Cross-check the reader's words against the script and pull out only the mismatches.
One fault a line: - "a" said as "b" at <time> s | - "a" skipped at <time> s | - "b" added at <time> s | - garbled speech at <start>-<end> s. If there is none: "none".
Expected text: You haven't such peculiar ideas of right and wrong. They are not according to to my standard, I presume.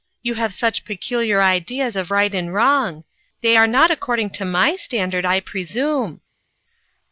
- "haven't" said as "have" at 0.3 s
- "to" skipped at 4.4 s